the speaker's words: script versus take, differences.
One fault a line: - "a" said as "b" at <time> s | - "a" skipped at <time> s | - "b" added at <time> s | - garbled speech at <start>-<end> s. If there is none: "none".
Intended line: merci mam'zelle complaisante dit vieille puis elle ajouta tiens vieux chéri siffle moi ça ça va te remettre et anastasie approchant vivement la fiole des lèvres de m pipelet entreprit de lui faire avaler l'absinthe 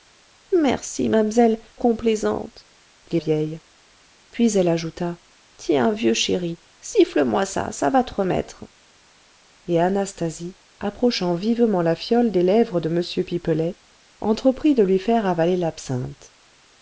none